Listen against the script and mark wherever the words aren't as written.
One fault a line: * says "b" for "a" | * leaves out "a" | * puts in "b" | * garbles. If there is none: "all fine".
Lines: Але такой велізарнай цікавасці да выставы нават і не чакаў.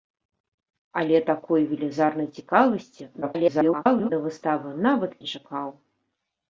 * garbles
* leaves out "і"